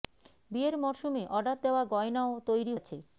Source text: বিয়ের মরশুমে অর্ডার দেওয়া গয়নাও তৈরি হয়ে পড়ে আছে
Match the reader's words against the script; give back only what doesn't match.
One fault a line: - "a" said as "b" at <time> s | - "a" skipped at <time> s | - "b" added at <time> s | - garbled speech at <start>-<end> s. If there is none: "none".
- "হয়ে পড়ে" skipped at 2.7 s